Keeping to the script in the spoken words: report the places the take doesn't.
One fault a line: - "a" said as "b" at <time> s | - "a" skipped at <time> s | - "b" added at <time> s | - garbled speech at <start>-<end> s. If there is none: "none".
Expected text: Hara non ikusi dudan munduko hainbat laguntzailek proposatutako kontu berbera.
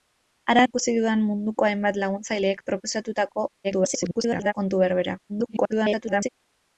- "non" skipped at 0.6 s
- garbled speech at 3.6-4.5 s
- garbled speech at 5.3-6.3 s